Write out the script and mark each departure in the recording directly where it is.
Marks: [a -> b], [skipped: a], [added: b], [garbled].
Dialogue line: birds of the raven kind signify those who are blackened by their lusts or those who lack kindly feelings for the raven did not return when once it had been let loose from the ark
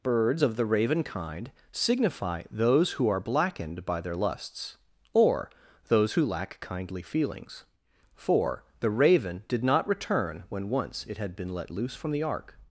birds of the raven kind signify those who are blackened by their lusts or those who lack kindly feelings for the raven did not return when once it had been let loose from the ark